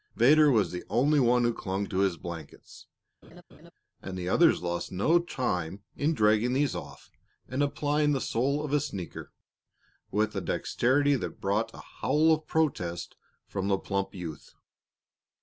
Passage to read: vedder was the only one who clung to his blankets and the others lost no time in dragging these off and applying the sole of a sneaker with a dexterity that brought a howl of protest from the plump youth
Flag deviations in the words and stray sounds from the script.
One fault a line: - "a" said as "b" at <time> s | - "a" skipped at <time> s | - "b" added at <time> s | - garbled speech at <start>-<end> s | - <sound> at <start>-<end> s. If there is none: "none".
- laugh at 3.2-3.7 s